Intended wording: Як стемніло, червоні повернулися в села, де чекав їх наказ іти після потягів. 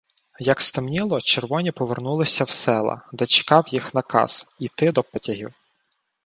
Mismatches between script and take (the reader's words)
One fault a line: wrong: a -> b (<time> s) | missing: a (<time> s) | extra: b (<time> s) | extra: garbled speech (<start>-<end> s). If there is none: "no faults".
wrong: після -> до (4.9 s)